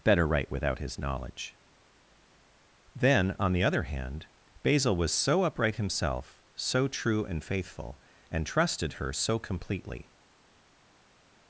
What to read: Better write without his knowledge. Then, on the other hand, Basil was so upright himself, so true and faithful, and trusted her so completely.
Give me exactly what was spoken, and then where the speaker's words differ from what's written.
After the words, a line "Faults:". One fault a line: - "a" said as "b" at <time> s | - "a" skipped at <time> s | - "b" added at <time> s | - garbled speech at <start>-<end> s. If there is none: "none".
Better write without his knowledge. Then, on the other hand, Basil was so upright himself, so true and faithful, and trusted her so completely.
Faults:
none